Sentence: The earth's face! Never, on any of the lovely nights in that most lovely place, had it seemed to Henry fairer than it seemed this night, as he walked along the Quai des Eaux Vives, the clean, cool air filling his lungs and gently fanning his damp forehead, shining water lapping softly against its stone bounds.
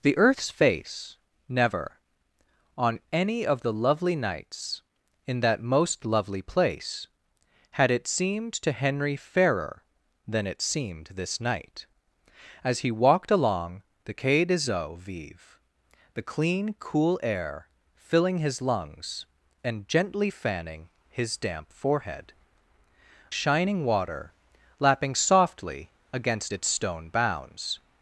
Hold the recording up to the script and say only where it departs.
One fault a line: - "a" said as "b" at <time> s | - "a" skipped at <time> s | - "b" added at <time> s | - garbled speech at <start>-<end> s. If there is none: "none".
none